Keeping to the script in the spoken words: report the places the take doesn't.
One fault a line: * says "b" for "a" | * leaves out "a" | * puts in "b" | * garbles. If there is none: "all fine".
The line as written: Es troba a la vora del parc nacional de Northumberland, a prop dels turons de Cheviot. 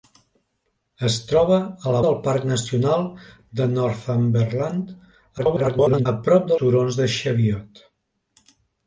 * leaves out "vora"
* garbles
* leaves out "dels"